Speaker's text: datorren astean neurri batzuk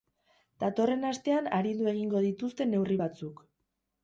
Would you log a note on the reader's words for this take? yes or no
yes